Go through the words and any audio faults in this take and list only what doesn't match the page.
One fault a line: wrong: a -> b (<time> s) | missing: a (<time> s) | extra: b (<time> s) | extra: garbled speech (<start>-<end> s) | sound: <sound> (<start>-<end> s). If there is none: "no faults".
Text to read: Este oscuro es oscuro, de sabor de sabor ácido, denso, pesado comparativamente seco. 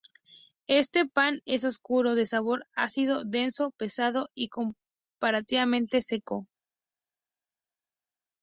wrong: oscuro -> pan (1.1 s)
missing: de sabor (2.6 s)
extra: y (4.3 s)